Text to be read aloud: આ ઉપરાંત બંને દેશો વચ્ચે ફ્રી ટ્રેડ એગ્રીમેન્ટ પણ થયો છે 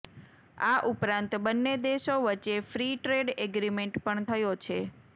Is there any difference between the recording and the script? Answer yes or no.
no